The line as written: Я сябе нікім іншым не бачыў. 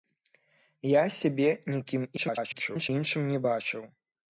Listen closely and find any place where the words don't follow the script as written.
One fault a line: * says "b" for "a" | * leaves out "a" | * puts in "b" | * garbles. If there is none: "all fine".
* garbles